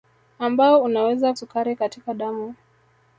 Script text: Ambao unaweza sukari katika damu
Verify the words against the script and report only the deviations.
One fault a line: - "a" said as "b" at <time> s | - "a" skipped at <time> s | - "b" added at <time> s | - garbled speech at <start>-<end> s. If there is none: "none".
none